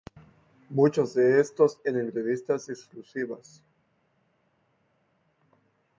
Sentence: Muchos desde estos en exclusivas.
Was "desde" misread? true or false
true